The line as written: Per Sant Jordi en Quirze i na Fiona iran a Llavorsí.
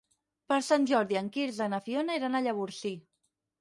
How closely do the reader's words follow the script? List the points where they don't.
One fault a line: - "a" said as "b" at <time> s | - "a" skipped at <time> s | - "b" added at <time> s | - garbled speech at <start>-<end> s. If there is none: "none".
none